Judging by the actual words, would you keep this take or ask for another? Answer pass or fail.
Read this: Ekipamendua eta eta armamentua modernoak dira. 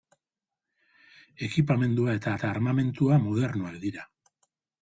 pass